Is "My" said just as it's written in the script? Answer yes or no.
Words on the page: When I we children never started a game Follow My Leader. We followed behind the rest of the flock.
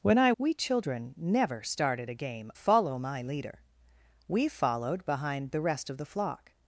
yes